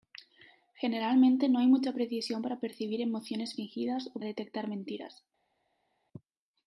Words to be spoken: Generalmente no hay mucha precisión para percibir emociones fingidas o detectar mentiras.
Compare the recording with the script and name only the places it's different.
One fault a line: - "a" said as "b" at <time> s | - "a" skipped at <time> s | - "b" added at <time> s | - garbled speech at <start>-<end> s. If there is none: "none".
none